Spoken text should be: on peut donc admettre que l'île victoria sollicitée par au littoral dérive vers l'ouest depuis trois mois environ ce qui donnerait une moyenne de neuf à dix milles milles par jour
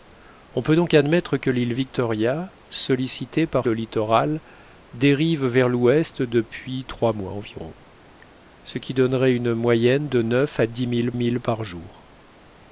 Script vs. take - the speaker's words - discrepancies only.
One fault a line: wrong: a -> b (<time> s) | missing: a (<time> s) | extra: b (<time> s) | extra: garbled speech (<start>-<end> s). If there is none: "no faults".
no faults